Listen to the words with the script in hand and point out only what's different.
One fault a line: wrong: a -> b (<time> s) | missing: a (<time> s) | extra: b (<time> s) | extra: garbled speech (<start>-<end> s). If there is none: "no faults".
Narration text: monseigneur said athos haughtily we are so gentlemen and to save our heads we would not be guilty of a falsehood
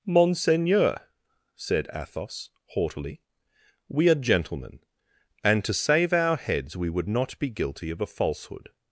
missing: so (4.1 s)